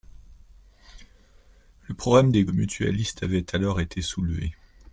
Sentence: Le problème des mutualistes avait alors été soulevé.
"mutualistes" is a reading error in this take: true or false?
false